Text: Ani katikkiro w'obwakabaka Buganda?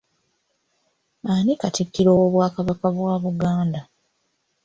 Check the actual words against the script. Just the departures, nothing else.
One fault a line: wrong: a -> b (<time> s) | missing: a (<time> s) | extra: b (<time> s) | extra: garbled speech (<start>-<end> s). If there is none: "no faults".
extra: bwa (2.9 s)